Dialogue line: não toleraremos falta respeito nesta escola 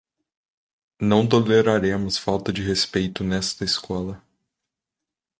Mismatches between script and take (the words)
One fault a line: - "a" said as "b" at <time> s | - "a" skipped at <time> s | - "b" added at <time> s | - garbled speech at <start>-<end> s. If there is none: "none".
- "de" added at 2.5 s